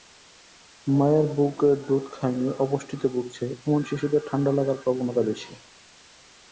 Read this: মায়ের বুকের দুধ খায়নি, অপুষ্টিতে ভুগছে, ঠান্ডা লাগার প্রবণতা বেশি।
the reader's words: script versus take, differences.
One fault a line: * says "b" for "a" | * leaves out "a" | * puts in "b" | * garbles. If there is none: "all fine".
* puts in "এমন শিশুদের"